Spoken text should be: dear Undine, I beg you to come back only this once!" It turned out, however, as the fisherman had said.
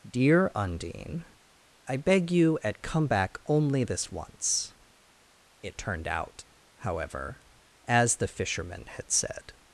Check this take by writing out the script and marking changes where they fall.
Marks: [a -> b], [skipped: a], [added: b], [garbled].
dear Undine, I beg you [to -> at] come back only this once!" It turned out, however, as the fisherman had said.